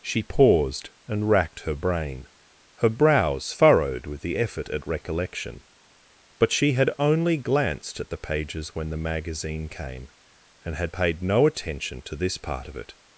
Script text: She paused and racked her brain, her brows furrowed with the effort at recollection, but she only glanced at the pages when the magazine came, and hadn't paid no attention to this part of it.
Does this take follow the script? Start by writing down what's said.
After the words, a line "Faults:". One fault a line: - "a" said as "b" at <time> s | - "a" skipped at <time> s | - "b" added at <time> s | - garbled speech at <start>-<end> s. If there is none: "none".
She paused and racked her brain, her brows furrowed with the effort at recollection, but she had only glanced at the pages when the magazine came, and had paid no attention to this part of it.
Faults:
- "had" added at 6.7 s
- "hadn't" said as "had" at 10.8 s